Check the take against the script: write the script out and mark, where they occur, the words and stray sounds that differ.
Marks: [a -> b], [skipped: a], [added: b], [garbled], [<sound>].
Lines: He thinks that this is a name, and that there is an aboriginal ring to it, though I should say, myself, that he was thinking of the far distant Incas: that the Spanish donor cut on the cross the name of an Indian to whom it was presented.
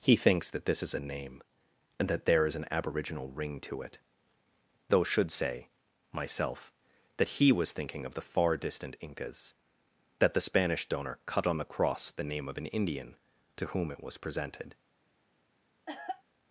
He thinks that this is a name, and that there is an aboriginal ring to it, though [skipped: I] should say, myself, that he was thinking of the far distant Incas: that the Spanish donor cut on the cross the name of an Indian to whom it was presented. [cough]